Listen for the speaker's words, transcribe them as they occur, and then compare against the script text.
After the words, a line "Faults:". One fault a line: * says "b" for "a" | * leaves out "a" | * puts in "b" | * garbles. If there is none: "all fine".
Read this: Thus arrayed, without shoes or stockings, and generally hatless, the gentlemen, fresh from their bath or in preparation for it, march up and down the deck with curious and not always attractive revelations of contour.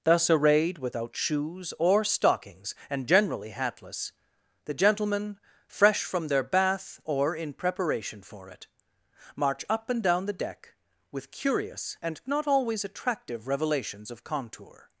Thus arrayed, without shoes or stockings, and generally hatless, the gentlemen, fresh from their bath or in preparation for it, march up and down the deck with curious and not always attractive revelations of contour.
Faults:
all fine